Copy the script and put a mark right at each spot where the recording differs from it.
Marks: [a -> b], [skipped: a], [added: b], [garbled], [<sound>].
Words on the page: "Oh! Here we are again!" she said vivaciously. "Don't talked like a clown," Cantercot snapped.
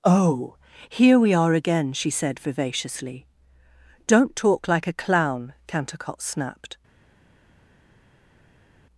"Oh! Here we are again!" she said vivaciously. "Don't [talked -> talk] like a clown," Cantercot snapped.